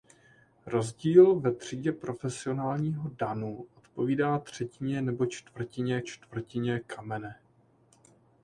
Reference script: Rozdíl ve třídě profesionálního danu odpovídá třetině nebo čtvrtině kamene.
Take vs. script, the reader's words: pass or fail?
fail